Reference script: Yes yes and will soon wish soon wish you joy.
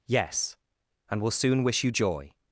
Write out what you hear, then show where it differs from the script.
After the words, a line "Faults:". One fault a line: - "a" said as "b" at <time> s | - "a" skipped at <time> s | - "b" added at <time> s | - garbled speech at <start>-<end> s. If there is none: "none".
Yes and will soon wish you joy.
Faults:
- "yes" skipped at 0.6 s
- "soon wish" skipped at 1.8 s